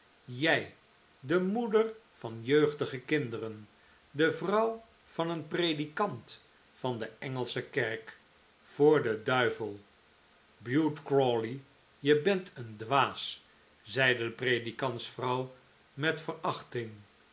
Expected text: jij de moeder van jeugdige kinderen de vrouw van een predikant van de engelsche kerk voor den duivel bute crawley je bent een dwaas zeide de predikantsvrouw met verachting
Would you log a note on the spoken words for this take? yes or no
no